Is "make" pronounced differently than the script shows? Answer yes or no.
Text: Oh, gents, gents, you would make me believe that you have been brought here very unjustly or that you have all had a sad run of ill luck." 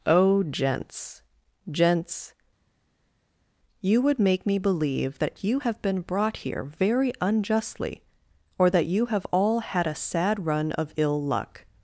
no